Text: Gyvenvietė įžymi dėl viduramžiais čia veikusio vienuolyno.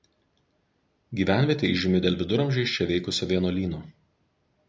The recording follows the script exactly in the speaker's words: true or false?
true